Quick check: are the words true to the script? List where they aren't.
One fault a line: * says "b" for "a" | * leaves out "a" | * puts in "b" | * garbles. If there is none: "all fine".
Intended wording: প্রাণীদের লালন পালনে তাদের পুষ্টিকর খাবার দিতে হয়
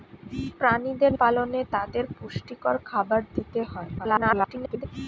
* leaves out "লালন"
* garbles